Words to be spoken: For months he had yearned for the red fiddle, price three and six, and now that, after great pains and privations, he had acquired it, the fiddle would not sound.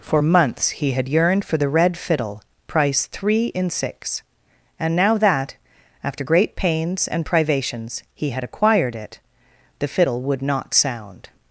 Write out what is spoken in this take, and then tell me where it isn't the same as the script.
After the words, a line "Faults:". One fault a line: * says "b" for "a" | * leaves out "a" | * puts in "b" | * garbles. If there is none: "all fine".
For months he had yearned for the red fiddle, price three in six, and now that, after great pains and privations, he had acquired it, the fiddle would not sound.
Faults:
* says "in" for "and"